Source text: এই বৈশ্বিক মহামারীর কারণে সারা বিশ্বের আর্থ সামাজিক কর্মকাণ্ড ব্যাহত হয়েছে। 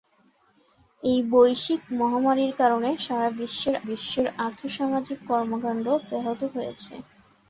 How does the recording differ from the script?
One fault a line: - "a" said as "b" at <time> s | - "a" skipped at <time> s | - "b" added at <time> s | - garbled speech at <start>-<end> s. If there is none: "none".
- "বিশ্বের" added at 3.9 s